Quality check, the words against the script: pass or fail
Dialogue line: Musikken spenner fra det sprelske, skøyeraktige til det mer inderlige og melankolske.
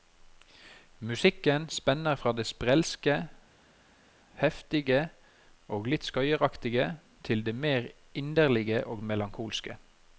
fail